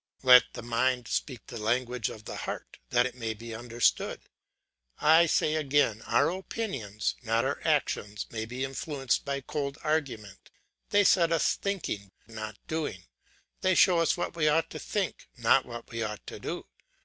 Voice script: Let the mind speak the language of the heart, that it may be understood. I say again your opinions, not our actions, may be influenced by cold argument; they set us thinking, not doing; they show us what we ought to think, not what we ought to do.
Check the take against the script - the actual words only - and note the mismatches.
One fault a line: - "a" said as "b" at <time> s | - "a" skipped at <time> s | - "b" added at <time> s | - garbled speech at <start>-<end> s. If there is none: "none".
- "your" said as "our" at 6.0 s